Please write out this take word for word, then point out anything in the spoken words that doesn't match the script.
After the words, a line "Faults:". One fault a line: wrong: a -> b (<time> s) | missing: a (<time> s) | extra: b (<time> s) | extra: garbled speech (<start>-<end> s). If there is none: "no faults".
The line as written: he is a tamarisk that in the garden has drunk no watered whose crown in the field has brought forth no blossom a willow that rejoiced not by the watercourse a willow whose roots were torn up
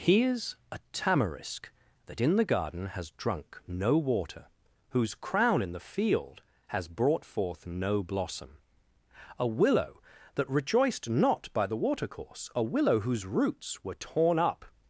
he is a tamarisk that in the garden has drunk no water whose crown in the field has brought forth no blossom a willow that rejoiced not by the watercourse a willow whose roots were torn up
Faults:
wrong: watered -> water (4.0 s)